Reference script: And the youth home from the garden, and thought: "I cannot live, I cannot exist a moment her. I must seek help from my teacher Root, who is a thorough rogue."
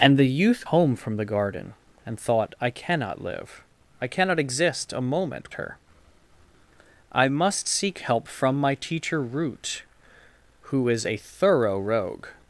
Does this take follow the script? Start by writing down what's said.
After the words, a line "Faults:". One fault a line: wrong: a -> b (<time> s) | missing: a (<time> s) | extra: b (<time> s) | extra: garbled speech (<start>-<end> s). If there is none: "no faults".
And the youth home from the garden, and thought: "I cannot live, I cannot exist a moment her. I must seek help from my teacher Root, who is a thorough rogue."
Faults:
no faults